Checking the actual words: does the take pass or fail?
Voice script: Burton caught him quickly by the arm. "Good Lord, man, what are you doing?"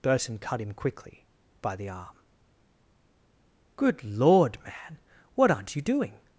fail